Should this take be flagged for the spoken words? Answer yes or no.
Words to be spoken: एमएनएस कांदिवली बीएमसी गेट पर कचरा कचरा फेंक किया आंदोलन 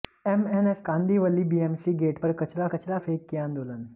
no